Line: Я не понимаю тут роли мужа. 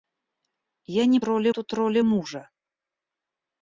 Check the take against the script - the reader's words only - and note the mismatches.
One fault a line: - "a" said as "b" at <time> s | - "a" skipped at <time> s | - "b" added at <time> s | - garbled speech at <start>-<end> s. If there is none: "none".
- "понимаю" said as "роли" at 1.2 s